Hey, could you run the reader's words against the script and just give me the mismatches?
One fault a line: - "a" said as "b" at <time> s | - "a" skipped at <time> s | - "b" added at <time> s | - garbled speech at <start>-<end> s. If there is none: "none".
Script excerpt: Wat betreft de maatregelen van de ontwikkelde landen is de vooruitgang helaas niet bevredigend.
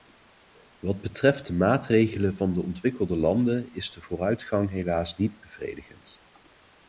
none